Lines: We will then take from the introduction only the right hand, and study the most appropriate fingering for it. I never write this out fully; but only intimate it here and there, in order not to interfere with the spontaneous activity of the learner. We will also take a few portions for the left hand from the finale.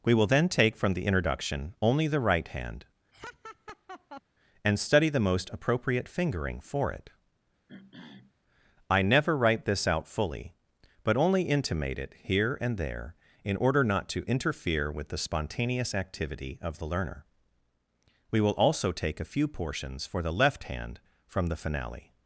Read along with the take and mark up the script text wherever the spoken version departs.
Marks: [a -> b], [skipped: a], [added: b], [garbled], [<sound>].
We will then take from the introduction only the right hand, [laugh] and study the most appropriate fingering for it. [throat clearing] I never write this out fully; but only intimate it here and there, in order not to interfere with the spontaneous activity of the learner. We will also take a few portions for the left hand from the finale.